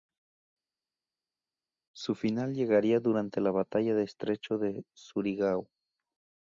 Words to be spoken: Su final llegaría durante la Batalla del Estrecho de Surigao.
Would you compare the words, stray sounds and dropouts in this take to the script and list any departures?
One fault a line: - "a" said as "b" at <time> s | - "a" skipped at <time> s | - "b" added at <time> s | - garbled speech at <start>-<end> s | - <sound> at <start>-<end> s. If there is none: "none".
none